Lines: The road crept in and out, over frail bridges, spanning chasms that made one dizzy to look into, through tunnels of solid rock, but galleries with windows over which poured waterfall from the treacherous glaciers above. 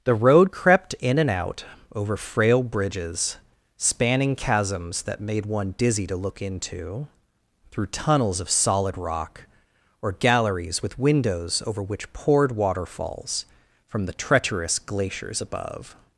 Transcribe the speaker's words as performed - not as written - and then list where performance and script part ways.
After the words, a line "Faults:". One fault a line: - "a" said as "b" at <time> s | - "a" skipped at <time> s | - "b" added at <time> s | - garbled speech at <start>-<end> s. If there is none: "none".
The road crept in and out, over frail bridges, spanning chasms that made one dizzy to look into, through tunnels of solid rock, or galleries with windows over which poured waterfalls from the treacherous glaciers above.
Faults:
- "but" said as "or" at 10.0 s
- "waterfall" said as "waterfalls" at 12.5 s